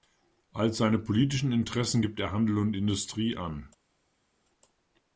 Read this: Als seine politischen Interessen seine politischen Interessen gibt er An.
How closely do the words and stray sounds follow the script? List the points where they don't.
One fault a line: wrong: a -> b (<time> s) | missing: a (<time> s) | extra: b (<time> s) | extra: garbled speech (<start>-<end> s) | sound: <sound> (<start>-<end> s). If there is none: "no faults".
wrong: seine politischen Interessen gibt er -> gibt er Handel und Industrie (2.0 s)